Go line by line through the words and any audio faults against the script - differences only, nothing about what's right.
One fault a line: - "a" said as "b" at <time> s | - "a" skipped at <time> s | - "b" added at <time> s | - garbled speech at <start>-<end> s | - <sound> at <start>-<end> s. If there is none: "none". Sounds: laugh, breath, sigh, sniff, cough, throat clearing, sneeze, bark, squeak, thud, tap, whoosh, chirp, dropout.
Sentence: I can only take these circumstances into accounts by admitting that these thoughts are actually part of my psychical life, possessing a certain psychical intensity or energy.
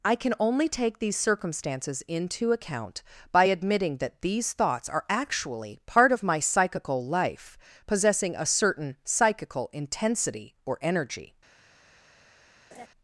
- "accounts" said as "account" at 2.5 s
- laugh at 12.7-12.9 s